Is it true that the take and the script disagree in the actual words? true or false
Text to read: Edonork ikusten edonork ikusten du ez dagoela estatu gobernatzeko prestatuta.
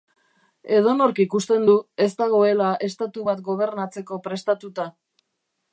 true